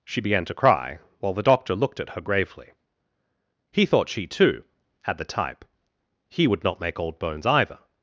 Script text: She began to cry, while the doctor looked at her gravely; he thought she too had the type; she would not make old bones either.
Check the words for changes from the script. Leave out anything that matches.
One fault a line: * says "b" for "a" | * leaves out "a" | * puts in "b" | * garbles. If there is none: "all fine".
* says "he" for "she"